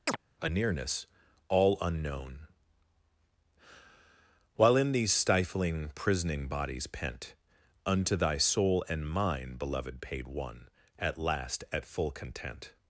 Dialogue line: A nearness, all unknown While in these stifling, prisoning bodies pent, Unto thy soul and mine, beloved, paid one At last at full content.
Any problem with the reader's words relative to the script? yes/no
no